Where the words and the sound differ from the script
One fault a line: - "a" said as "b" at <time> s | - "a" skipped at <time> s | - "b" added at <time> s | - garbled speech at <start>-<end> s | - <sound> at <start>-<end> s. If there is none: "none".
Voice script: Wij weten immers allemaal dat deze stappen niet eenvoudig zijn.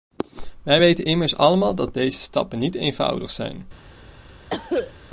- cough at 4.5-4.9 s